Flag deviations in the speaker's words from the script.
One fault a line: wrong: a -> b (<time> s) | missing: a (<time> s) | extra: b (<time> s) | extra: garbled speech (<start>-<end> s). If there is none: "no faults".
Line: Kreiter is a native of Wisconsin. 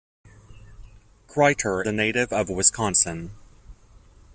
missing: is (1.9 s)